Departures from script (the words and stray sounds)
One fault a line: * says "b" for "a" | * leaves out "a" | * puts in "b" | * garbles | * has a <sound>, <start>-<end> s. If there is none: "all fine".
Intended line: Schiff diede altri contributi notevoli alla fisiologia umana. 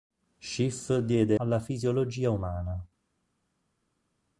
* leaves out "altri contributi notevoli"